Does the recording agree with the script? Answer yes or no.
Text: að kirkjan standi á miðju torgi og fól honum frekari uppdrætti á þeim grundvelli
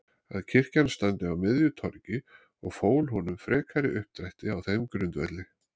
yes